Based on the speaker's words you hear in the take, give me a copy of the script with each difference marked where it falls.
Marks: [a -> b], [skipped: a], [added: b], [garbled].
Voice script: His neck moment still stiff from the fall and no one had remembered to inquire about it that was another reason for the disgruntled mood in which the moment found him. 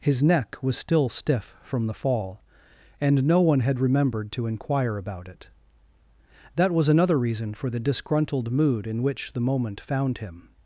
His neck [moment -> was] still stiff from the fall and no one had remembered to inquire about it that was another reason for the disgruntled mood in which the moment found him.